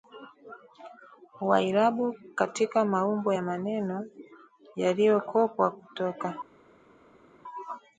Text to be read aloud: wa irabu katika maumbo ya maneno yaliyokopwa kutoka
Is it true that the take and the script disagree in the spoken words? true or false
false